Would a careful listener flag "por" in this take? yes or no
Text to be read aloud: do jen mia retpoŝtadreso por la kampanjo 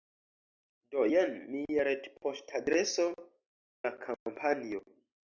yes